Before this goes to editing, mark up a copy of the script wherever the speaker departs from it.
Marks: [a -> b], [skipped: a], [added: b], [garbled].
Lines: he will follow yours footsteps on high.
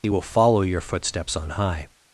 he will follow [yours -> your] footsteps on high.